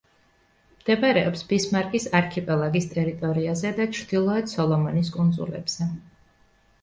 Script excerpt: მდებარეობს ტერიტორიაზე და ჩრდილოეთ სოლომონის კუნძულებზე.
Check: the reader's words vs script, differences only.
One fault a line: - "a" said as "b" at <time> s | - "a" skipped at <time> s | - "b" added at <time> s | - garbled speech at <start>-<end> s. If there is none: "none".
- "ბისმარკის არქიპელაგის" added at 1.5 s